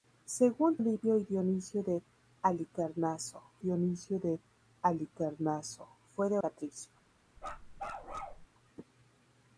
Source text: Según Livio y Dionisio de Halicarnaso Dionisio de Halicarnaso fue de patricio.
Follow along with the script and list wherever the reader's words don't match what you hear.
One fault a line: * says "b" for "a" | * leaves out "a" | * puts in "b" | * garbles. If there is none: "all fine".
all fine